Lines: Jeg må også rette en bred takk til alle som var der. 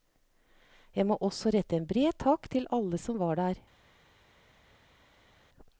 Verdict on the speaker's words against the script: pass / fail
pass